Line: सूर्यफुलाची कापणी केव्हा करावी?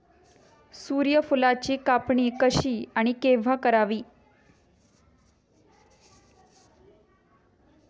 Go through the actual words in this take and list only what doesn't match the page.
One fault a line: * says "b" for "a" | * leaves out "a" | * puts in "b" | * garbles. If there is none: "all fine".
* puts in "कशी आणि"